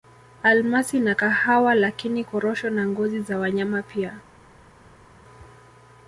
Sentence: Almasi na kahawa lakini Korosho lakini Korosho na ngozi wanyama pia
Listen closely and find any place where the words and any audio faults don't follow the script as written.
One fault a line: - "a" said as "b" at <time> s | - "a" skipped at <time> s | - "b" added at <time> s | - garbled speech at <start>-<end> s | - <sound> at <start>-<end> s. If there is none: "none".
- "lakini Korosho" skipped at 2.7 s
- "za" added at 3.2 s